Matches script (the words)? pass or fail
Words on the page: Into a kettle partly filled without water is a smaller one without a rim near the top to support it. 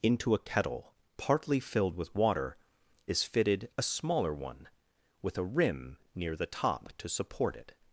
fail